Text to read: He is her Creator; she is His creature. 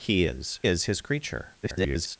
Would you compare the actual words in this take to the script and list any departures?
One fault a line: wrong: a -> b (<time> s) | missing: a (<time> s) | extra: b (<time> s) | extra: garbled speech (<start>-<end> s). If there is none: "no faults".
missing: her Creator she (0.6 s)
extra: garbled speech (1.6-2.2 s)